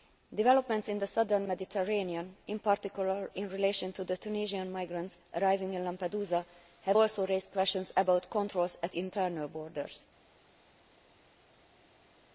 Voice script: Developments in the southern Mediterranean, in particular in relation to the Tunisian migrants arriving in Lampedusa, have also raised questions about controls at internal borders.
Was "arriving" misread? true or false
false